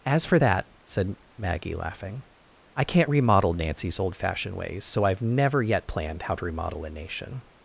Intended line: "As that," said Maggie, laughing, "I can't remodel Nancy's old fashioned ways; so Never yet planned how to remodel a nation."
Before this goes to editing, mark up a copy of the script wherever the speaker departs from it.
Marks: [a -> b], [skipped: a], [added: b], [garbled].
"As [added: for] that," said Maggie, laughing, "I can't remodel Nancy's old fashioned ways; so [added: I've] Never yet planned how to remodel a nation."